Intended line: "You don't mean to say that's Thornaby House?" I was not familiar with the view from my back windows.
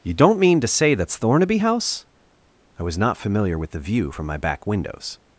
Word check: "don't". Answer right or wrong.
right